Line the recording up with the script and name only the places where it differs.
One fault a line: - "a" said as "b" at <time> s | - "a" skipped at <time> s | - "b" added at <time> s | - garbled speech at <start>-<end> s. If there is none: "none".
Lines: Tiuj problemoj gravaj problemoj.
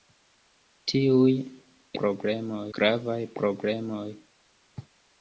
none